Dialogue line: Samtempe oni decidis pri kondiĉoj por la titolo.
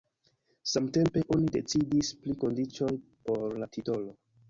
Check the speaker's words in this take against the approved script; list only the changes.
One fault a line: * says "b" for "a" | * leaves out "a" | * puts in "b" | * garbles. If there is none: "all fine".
all fine